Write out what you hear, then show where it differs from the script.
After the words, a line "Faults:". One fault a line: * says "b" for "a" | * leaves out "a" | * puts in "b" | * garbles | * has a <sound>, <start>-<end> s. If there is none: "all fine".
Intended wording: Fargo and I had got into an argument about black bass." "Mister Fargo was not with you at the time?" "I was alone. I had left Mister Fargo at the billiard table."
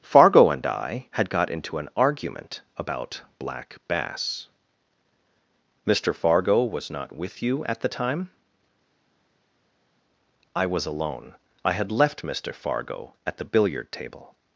Fargo and I had got into an argument about black bass." "Mister Fargo was not with you at the time?" "I was alone. I had left Mister Fargo at the billiard table."
Faults:
all fine